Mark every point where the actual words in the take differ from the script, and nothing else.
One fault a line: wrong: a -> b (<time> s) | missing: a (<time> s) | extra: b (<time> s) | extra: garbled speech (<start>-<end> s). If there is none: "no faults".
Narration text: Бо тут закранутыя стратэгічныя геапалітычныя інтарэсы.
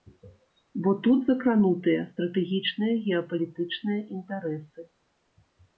no faults